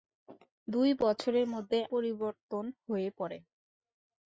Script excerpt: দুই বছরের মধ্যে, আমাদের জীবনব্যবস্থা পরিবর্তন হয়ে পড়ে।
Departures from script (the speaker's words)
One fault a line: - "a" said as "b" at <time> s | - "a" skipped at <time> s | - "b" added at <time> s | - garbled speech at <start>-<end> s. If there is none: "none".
- "আমাদের জীবনব্যবস্থা" skipped at 1.8 s